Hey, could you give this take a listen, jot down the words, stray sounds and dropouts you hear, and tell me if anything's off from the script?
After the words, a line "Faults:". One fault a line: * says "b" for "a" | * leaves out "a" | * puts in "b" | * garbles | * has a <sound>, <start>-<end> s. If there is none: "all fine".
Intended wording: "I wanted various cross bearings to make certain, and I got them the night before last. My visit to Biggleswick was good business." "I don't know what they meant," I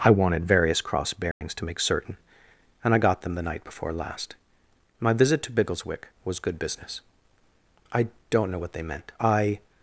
"I wanted various cross bearings to make certain, and I got them the night before last. My visit to Biggleswick was good business." "I don't know what they meant," I
Faults:
* has a dropout, 1.3-1.4 s